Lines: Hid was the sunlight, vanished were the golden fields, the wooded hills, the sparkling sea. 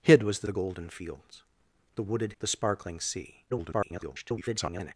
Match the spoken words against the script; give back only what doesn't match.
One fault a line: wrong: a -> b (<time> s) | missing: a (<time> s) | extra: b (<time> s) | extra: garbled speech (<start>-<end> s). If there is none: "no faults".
missing: sunlight vanished were (0.5 s)
missing: hills (2.3 s)
extra: garbled speech (3.5-4.9 s)